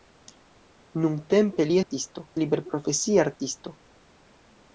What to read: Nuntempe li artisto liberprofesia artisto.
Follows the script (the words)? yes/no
yes